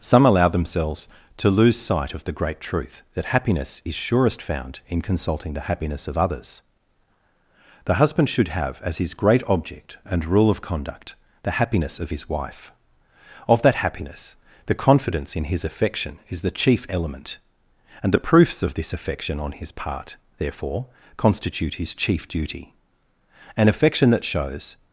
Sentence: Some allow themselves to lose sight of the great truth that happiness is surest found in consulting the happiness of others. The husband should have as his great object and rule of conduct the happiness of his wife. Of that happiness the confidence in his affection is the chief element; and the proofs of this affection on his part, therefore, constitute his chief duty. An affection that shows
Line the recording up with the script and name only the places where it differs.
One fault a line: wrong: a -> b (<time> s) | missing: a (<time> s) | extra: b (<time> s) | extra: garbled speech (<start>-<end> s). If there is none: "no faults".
no faults